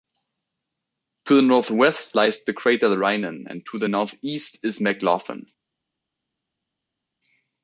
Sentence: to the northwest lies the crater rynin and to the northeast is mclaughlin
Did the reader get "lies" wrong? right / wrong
right